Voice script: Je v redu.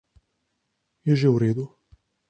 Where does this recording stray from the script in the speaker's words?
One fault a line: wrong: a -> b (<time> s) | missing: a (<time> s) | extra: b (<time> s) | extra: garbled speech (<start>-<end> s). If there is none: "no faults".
extra: že (1.1 s)